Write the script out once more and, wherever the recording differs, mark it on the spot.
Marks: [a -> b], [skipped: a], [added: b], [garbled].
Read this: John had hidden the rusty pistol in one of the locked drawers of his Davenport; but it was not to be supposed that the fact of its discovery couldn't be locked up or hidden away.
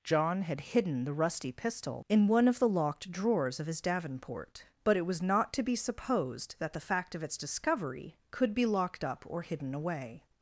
John had hidden the rusty pistol in one of the locked drawers of his Davenport; but it was not to be supposed that the fact of its discovery [couldn't -> could] be locked up or hidden away.